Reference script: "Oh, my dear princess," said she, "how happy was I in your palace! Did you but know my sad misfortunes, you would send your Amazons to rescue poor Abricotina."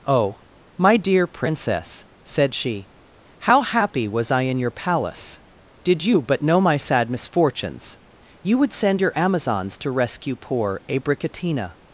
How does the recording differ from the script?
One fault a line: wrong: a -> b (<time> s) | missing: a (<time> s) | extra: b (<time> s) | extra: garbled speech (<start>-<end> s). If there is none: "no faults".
no faults